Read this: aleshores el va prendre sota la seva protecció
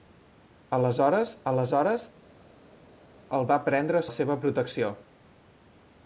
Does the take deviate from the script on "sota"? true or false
true